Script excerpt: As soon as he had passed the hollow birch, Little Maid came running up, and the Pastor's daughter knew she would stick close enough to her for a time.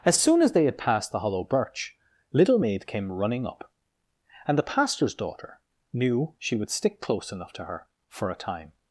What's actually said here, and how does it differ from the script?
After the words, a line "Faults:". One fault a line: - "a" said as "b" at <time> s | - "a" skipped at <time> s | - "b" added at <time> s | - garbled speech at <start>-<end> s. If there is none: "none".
As soon as they had passed the hollow birch, Little Maid came running up, and the Pastor's daughter knew she would stick close enough to her for a time.
Faults:
- "he" said as "they" at 0.5 s